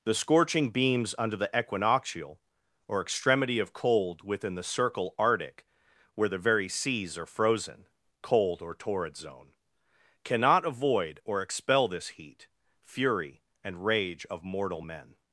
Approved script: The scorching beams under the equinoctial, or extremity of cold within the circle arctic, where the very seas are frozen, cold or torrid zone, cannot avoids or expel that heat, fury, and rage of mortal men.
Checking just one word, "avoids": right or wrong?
wrong